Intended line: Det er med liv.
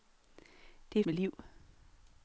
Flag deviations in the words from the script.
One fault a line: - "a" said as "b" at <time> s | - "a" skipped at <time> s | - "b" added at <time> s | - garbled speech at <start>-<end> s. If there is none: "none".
none